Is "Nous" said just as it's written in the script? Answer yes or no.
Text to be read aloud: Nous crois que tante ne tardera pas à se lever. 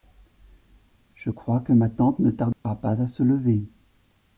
no